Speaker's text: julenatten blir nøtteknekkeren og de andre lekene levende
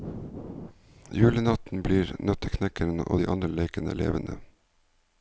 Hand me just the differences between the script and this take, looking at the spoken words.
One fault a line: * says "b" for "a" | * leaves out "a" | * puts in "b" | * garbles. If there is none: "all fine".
all fine